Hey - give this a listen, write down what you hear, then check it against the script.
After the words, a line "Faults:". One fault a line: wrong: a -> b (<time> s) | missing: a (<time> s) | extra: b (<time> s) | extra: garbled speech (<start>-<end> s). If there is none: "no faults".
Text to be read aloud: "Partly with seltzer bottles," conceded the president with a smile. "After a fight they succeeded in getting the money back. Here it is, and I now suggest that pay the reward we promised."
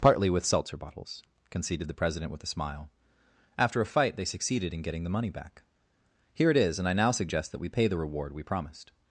"Partly with seltzer bottles," conceded the president with a smile. "After a fight they succeeded in getting the money back. Here it is, and I now suggest that we pay the reward we promised."
Faults:
extra: we (7.6 s)